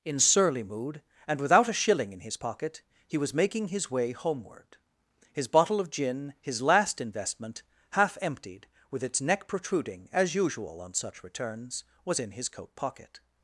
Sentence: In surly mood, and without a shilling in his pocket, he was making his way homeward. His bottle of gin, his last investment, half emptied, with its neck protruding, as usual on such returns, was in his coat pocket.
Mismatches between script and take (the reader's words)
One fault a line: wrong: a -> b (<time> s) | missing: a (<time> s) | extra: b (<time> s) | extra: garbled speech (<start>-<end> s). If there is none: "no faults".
no faults